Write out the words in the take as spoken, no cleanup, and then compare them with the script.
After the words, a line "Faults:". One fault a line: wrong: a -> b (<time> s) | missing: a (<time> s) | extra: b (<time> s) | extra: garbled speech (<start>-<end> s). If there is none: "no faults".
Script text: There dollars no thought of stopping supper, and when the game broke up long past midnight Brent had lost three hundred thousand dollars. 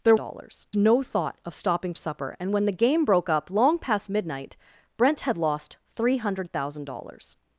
There dollars no thought of stopping supper, and when the game broke up long past midnight Brent had lost three hundred thousand dollars.
Faults:
no faults